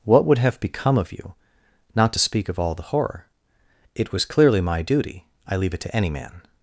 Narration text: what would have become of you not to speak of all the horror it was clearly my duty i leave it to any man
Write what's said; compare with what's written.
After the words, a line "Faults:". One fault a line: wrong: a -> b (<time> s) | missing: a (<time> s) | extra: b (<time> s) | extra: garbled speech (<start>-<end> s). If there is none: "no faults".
what would have become of you not to speak of all the horror it was clearly my duty i leave it to any man
Faults:
no faults